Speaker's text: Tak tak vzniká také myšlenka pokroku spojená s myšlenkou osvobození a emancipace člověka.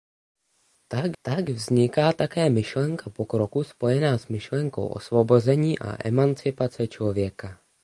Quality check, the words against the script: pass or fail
pass